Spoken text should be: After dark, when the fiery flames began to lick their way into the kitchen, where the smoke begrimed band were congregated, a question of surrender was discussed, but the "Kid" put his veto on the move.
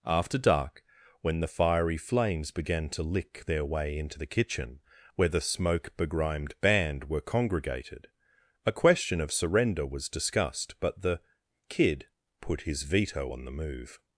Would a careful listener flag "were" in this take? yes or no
no